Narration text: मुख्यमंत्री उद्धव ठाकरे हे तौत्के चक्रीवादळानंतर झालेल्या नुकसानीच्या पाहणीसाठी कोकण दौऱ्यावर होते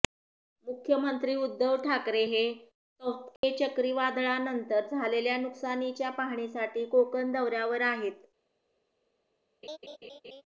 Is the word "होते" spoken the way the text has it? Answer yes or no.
no